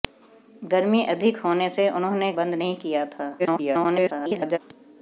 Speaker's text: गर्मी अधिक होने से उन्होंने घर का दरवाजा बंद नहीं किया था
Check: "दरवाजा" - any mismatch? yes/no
yes